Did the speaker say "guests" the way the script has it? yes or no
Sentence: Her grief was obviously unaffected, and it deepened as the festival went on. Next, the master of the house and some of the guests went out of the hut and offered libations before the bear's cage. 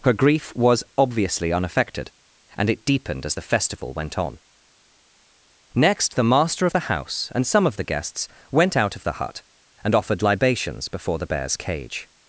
yes